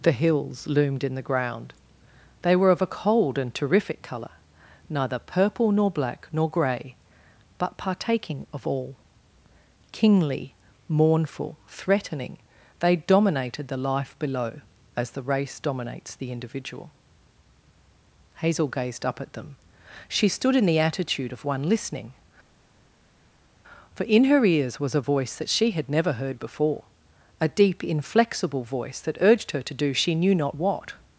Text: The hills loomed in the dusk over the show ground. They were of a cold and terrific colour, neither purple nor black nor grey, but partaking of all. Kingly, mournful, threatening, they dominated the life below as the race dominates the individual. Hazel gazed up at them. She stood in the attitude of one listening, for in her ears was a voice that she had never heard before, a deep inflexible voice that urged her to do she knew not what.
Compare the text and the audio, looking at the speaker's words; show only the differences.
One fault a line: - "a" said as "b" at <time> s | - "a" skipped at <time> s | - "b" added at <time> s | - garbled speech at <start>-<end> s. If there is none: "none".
- "dusk over the show" skipped at 1.2 s